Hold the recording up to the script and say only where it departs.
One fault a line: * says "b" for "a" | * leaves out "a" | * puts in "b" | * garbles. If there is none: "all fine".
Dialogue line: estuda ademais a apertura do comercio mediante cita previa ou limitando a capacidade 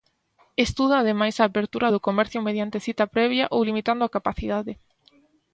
all fine